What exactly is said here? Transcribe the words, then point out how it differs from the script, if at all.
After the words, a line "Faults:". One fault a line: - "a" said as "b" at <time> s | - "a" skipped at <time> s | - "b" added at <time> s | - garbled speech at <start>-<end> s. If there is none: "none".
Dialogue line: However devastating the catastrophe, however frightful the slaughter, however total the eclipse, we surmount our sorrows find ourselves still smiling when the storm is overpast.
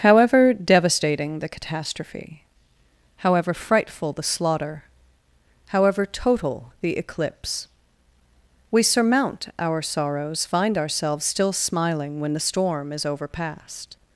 However devastating the catastrophe, however frightful the slaughter, however total the eclipse, we surmount our sorrows find ourselves still smiling when the storm is overpast.
Faults:
none